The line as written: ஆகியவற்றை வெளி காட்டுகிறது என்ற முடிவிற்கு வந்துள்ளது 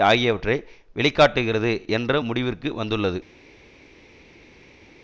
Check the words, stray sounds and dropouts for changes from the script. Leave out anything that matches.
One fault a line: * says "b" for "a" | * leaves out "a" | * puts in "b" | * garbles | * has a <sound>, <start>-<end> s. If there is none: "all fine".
all fine